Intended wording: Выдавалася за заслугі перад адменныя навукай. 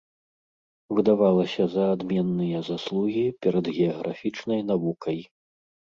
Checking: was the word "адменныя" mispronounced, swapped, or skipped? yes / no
yes